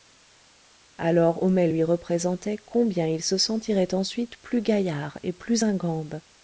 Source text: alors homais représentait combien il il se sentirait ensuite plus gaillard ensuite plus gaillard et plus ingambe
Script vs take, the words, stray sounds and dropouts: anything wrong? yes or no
yes